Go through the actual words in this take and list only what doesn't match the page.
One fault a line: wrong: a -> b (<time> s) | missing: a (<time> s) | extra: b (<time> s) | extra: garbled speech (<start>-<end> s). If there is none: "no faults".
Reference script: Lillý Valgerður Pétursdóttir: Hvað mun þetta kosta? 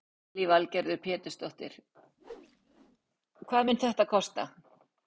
no faults